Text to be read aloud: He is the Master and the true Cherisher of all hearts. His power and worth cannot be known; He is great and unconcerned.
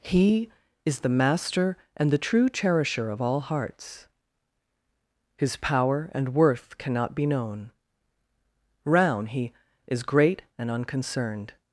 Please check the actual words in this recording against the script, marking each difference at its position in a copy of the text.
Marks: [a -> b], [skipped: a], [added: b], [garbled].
He is the Master and the true Cherisher of all hearts. His power and worth cannot be known; [added: round] He is great and unconcerned.